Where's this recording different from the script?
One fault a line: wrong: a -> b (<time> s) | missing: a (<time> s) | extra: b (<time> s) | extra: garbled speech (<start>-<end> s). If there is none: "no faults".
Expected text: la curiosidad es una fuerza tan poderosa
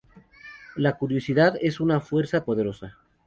missing: tan (2.4 s)